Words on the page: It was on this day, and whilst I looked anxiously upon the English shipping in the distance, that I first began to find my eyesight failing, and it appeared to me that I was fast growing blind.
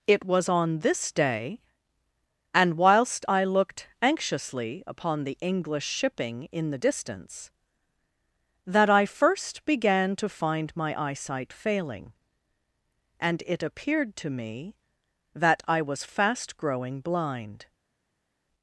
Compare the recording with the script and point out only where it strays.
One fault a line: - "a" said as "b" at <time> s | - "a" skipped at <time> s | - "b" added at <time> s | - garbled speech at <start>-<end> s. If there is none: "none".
none